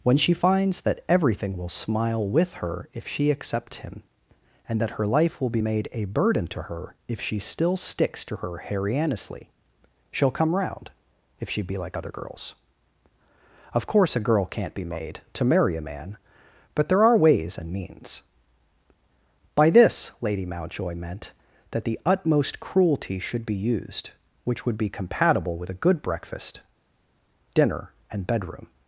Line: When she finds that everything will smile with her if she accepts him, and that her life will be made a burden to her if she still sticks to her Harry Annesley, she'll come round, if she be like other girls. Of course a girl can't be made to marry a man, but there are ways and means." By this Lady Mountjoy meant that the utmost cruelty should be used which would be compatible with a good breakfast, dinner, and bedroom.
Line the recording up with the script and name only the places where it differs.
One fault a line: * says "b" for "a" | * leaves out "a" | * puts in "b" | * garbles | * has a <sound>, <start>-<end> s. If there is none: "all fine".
all fine